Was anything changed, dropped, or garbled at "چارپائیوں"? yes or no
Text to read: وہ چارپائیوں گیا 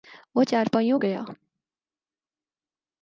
no